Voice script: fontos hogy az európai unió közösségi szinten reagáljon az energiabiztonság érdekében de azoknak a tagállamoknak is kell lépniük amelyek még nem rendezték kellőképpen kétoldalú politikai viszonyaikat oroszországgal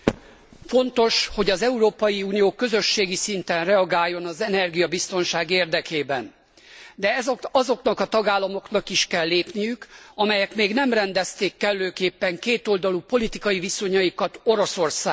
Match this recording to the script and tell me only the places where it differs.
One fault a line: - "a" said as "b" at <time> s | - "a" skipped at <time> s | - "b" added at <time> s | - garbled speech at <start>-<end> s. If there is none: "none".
none